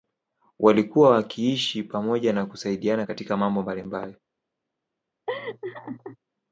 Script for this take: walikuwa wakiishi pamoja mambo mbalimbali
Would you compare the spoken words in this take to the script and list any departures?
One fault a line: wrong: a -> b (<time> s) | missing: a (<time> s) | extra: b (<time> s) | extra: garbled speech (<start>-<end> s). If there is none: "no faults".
extra: na kusaidiana katika (2.3 s)